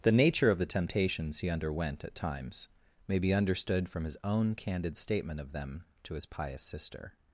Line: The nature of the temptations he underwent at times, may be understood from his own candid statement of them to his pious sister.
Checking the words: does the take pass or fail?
pass